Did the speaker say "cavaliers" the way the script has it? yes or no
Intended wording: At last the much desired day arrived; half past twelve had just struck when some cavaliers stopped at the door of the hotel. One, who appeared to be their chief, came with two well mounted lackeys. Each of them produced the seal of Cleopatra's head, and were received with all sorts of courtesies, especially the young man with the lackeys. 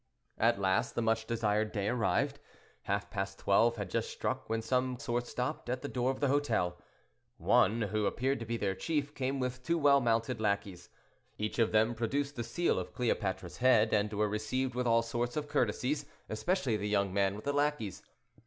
no